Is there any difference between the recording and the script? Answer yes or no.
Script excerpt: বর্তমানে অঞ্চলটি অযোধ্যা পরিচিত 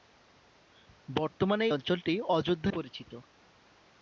no